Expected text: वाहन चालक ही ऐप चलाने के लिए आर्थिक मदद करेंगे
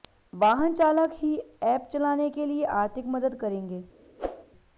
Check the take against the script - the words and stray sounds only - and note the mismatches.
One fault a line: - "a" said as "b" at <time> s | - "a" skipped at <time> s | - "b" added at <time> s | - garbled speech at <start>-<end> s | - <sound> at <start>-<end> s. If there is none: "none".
- whoosh at 4.2-4.4 s